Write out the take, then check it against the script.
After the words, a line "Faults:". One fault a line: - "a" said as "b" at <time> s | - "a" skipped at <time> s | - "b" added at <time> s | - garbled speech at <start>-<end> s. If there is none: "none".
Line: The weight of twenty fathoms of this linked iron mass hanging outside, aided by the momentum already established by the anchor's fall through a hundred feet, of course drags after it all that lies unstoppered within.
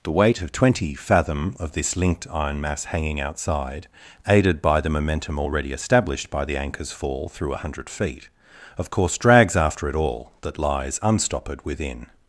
The weight of twenty fathom of this linked iron mass hanging outside, aided by the momentum already established by the anchor's fall through a hundred feet, of course drags after it all that lies unstoppered within.
Faults:
- "fathoms" said as "fathom" at 0.9 s